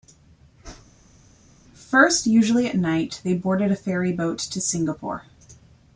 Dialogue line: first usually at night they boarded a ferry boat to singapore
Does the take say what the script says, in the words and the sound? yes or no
yes